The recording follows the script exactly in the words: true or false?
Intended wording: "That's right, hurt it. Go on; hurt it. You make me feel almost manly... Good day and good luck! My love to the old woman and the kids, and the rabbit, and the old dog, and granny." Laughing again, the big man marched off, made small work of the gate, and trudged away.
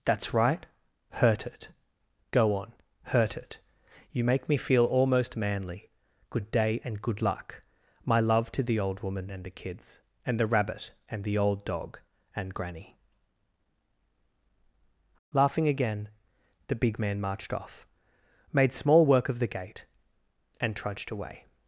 true